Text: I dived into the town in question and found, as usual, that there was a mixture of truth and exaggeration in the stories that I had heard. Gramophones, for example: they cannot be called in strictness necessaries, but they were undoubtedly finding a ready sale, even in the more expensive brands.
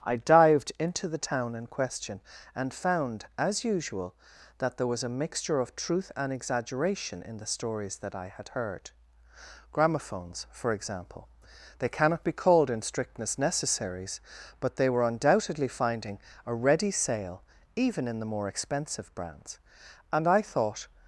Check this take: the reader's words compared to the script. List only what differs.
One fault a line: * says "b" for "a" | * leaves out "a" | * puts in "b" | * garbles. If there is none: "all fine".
* puts in "And I thought"